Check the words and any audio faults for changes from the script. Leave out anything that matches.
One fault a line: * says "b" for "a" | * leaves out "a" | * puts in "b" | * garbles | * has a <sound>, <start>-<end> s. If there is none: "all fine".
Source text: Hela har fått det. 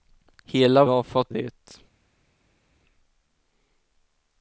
all fine